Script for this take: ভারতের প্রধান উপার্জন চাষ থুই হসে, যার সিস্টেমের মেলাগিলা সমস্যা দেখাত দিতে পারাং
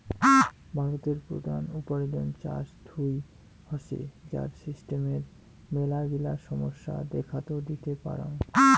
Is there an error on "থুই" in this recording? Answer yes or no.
no